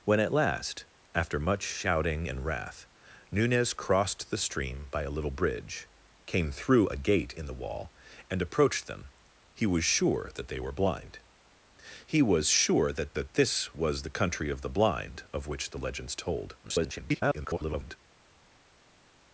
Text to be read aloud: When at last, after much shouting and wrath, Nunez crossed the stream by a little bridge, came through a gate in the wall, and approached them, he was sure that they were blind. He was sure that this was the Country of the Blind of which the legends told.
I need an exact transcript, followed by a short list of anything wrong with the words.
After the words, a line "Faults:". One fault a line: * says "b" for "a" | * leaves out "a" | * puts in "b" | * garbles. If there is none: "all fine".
When at last, after much shouting and wrath, Nunez crossed the stream by a little bridge, came through a gate in the wall, and approached them, he was sure that they were blind. He was sure that that this was the Country of the Blind of which the legends told. [garbled]
Faults:
* puts in "that"
* garbles